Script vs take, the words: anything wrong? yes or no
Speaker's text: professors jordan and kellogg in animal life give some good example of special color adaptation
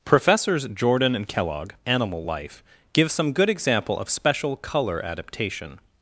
yes